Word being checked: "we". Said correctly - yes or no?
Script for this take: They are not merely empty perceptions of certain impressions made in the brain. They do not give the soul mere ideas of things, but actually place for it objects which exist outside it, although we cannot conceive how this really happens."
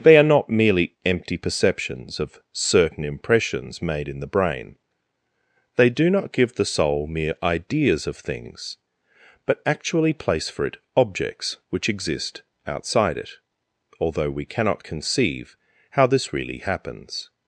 yes